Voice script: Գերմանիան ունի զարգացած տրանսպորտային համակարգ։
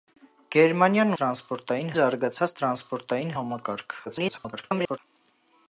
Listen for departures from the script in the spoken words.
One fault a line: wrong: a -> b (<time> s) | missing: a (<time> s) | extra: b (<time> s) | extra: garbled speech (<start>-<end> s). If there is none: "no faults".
wrong: ունի -> տրանսպորտային (1.2 s)
extra: garbled speech (4.1-5.0 s)